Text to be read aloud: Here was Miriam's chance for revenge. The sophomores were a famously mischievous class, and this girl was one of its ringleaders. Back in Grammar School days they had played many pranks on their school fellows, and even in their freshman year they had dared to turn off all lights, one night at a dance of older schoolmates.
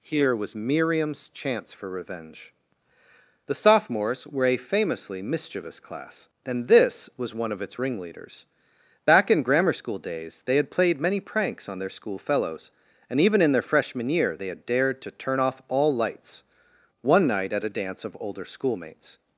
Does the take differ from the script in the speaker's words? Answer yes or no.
yes